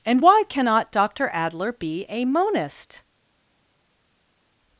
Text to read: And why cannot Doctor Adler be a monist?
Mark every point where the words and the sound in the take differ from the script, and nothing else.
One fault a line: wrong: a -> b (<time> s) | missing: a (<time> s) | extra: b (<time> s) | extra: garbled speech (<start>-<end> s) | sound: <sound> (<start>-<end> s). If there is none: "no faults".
no faults